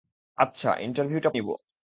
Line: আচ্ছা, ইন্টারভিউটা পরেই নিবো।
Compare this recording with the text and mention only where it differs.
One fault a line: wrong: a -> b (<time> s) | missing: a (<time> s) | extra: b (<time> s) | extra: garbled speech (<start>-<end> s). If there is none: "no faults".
missing: পরেই (1.3 s)